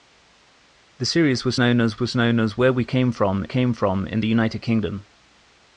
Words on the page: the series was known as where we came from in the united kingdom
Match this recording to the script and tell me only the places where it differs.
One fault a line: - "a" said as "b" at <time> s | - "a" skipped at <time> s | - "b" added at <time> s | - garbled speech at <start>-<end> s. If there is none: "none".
- "was known as" added at 2.0 s
- "came from" added at 3.4 s